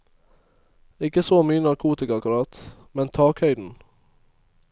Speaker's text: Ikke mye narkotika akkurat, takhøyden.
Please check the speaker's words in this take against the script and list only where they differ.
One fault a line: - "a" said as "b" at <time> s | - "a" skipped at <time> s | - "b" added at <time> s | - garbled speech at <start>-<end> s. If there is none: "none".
- "så" added at 1.2 s
- "men" added at 2.9 s